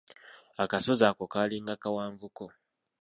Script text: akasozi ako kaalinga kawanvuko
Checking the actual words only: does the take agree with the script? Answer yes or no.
yes